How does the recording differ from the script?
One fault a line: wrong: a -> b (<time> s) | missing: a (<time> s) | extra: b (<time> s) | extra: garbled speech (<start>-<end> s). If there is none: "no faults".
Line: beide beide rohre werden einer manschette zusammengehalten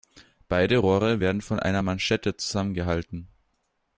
missing: beide (0.8 s)
extra: von (1.4 s)